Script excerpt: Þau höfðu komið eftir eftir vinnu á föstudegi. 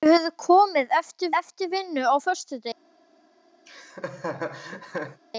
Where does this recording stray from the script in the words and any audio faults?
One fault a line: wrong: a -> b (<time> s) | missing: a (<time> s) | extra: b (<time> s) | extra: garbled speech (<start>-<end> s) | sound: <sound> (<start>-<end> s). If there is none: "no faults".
sound: laugh (3.7-5.2 s)